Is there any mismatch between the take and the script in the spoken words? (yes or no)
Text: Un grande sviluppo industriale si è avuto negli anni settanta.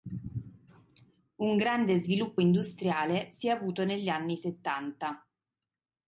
no